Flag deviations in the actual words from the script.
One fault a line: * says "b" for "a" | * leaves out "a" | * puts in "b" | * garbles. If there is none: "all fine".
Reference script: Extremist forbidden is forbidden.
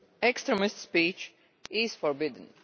* says "speech" for "forbidden"